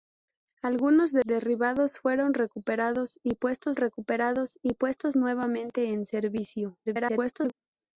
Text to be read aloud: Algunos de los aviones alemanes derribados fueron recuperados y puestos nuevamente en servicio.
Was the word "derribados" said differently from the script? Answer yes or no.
yes